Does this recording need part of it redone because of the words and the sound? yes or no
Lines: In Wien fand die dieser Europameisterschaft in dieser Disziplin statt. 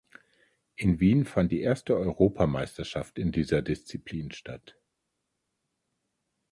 yes